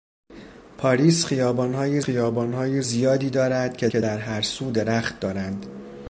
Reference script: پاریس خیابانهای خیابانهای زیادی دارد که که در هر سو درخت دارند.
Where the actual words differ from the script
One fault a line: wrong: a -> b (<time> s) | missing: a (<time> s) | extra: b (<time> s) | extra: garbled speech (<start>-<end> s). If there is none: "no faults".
no faults